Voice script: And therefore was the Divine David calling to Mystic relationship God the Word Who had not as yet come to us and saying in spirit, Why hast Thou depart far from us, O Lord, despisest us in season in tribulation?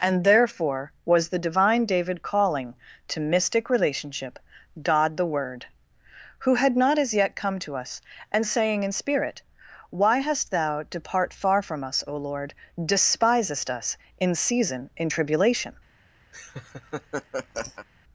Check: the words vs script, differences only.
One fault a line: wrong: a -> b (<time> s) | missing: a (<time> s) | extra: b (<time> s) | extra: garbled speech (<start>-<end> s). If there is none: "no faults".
no faults